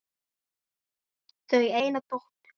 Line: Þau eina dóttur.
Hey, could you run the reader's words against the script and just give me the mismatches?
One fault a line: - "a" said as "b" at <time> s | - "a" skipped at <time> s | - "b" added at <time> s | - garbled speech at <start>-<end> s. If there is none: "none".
none